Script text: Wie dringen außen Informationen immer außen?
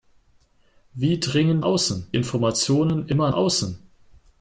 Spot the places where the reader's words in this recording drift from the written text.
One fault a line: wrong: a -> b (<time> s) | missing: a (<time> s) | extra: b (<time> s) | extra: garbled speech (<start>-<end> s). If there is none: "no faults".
no faults